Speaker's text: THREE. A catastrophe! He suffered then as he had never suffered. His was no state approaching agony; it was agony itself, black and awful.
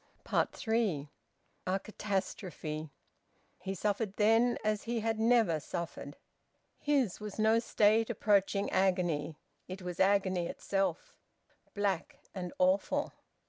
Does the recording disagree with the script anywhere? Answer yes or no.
no